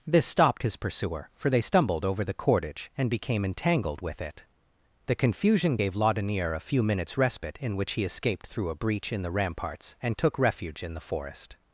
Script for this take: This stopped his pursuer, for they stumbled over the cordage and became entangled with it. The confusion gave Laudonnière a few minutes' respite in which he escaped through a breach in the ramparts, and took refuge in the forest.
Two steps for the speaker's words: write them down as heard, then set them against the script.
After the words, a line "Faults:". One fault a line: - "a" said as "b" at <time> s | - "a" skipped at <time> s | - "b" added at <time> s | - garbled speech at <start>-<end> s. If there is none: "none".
This stopped his pursuer, for they stumbled over the cordage and became entangled with it. The confusion gave Laudonnière a few minutes' respite in which he escaped through a breach in the ramparts, and took refuge in the forest.
Faults:
none